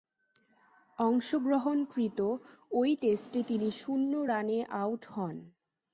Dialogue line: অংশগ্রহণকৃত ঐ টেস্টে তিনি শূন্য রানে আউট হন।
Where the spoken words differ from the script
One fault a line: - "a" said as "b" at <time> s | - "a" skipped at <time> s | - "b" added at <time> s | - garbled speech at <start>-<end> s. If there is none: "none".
none